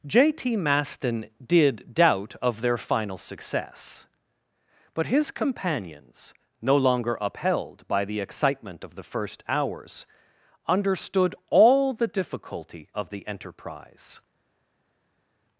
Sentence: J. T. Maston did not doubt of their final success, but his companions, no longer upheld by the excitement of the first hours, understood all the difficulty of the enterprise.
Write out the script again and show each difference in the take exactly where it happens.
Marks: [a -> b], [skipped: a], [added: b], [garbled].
J. T. Maston did [skipped: not] doubt of their final success, but his companions, no longer upheld by the excitement of the first hours, understood all the difficulty of the enterprise.